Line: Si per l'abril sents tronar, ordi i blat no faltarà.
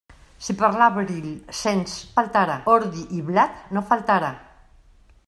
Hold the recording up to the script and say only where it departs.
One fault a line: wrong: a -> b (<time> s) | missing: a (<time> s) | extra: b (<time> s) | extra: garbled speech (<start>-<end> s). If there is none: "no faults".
wrong: tronar -> faltarà (2.2 s)